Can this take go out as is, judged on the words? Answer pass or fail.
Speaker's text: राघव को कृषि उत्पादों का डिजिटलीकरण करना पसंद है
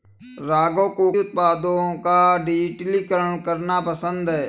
fail